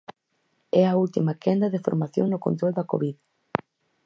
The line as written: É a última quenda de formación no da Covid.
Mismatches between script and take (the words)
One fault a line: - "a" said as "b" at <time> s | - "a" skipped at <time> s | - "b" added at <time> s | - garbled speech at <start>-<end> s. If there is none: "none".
- "control" added at 2.5 s